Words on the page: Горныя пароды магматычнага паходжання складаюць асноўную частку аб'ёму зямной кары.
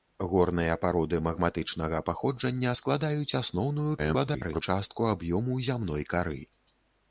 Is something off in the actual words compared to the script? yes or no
yes